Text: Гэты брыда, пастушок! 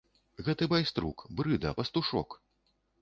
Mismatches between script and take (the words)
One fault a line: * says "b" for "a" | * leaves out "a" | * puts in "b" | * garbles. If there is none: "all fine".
* puts in "байструк"